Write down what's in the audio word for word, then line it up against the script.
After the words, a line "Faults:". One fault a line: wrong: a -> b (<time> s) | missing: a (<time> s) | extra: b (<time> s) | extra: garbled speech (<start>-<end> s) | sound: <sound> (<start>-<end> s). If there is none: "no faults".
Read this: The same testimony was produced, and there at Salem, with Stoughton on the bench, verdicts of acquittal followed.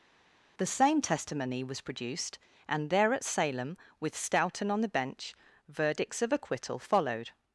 The same testimony was produced, and there at Salem, with Stoughton on the bench, verdicts of acquittal followed.
Faults:
no faults